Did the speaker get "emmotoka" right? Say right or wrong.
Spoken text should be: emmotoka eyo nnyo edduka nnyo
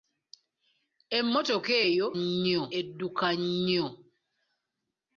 right